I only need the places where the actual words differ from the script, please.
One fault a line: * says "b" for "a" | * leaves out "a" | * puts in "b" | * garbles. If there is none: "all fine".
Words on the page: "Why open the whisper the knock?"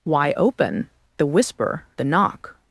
all fine